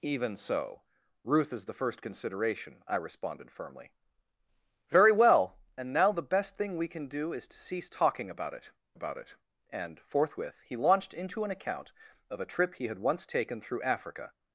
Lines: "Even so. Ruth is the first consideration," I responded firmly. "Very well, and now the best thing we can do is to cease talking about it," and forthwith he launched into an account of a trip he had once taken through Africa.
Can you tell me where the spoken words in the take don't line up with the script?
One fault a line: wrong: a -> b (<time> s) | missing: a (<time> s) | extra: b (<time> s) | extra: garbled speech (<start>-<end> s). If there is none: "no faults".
extra: about it (8.9 s)